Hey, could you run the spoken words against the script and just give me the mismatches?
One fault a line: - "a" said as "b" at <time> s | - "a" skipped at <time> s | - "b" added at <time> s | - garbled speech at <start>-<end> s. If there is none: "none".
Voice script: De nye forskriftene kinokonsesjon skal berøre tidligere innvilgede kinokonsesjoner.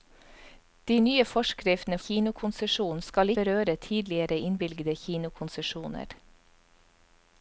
none